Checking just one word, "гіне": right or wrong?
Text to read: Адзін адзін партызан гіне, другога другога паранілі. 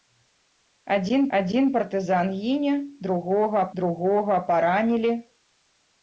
right